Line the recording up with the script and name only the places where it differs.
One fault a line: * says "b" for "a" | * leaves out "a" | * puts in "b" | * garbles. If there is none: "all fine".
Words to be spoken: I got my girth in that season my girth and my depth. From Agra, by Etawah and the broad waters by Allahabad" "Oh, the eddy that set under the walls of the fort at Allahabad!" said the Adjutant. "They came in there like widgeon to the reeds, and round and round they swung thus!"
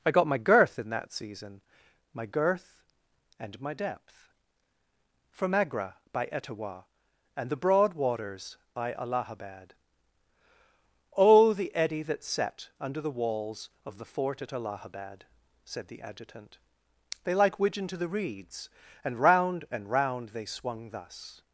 * leaves out "came in there"